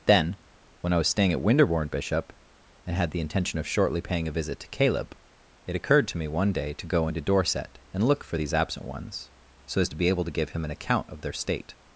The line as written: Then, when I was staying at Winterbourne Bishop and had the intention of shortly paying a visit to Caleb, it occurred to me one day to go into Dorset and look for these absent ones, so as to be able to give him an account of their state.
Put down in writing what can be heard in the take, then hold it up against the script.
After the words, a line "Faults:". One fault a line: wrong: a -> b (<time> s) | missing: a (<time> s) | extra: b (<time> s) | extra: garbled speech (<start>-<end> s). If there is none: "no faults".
Then, when I was staying at Winterbourne Bishop and had the intention of shortly paying a visit to Caleb, it occurred to me one day to go into Dorset and look for these absent ones, so as to be able to give him an account of their state.
Faults:
no faults